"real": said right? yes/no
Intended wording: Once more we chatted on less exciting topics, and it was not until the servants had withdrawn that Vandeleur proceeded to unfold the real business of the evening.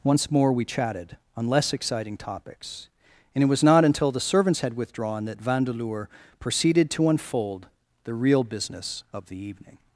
yes